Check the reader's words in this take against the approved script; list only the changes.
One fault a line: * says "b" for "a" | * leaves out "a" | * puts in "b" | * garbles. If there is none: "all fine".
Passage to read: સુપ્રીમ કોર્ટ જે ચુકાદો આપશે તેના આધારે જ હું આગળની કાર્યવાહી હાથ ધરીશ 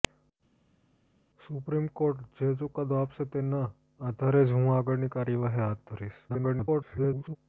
* garbles